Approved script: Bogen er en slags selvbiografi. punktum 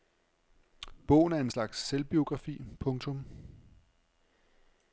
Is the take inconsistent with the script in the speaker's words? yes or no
no